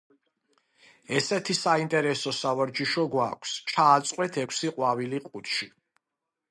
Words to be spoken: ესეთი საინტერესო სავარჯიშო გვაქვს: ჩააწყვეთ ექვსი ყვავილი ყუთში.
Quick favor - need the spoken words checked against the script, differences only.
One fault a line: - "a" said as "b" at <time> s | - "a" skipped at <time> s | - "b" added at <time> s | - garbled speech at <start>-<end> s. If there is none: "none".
none